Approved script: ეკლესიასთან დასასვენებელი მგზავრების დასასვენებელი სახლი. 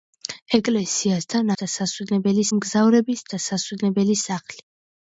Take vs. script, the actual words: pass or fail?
pass